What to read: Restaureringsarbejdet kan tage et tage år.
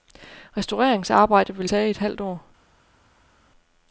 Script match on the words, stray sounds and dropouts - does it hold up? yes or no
no